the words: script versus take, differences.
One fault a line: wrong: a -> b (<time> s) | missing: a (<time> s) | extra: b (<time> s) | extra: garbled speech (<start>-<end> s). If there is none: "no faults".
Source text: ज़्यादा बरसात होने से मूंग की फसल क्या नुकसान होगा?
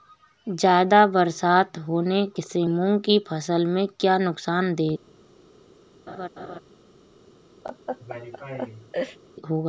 extra: में (3.7 s)